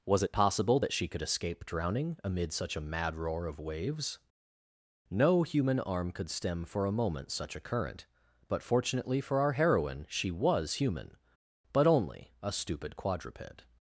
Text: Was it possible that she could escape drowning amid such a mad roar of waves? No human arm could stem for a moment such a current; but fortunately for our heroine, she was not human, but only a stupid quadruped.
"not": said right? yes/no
no